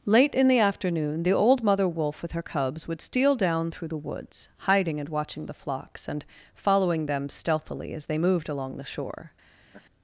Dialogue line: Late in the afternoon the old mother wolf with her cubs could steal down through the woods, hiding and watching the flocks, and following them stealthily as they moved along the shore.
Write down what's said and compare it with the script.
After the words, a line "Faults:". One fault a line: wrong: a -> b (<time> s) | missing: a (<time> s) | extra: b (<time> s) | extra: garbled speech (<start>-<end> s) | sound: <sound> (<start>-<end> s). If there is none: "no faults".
Late in the afternoon the old mother wolf with her cubs would steal down through the woods, hiding and watching the flocks, and following them stealthily as they moved along the shore.
Faults:
wrong: could -> would (2.9 s)
sound: laugh (9.7-9.8 s)